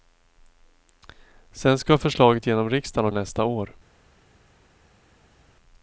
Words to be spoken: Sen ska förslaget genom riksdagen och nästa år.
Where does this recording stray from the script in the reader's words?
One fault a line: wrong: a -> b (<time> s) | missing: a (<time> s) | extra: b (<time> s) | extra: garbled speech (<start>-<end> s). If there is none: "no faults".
no faults